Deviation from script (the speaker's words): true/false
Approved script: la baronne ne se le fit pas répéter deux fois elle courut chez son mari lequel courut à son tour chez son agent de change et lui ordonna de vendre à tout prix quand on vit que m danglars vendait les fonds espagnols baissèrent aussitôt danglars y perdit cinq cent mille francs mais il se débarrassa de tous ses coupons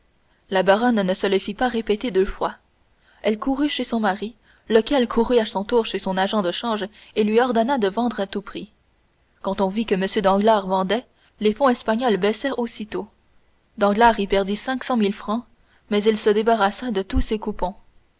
false